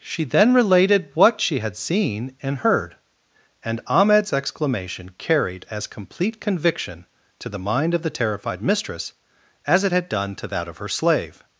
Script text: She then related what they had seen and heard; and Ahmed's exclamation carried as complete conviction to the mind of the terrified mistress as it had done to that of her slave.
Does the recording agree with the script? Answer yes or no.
no